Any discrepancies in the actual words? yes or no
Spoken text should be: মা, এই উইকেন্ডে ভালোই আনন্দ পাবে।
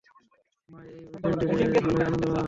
no